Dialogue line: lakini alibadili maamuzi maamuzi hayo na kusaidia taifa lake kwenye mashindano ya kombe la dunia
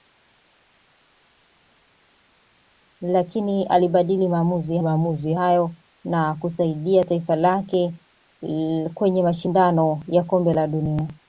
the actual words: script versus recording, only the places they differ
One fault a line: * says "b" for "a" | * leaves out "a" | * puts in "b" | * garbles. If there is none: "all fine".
all fine